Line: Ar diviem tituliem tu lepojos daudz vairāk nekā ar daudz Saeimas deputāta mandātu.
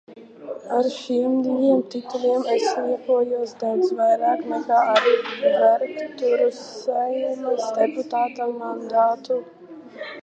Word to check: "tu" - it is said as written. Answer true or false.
false